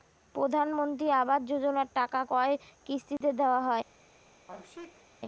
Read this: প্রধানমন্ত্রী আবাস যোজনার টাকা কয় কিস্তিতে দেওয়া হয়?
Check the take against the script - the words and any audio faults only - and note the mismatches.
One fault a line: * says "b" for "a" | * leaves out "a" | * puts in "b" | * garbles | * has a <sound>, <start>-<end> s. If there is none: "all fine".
* has a dropout, 3.2-3.2 s
* has a sneeze, 4.5-5.1 s